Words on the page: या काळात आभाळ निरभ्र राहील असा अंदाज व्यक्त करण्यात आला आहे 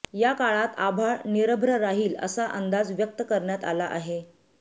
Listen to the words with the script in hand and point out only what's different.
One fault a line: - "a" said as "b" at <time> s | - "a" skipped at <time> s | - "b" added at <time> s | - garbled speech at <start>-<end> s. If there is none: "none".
none